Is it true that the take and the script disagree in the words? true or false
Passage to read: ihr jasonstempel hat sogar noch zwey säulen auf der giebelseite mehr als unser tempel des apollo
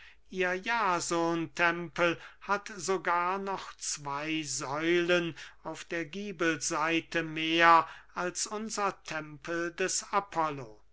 false